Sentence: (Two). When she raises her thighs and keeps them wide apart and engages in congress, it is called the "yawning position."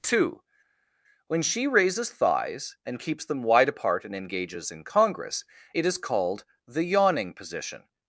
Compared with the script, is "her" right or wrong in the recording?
wrong